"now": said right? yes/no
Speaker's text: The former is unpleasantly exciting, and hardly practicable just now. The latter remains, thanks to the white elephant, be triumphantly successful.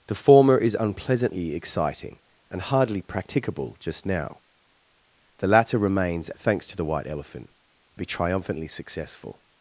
yes